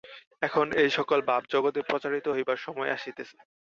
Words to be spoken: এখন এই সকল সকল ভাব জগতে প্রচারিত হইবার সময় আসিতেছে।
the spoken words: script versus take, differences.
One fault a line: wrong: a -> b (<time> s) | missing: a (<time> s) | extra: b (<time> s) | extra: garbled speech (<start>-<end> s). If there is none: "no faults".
missing: সকল (1.2 s)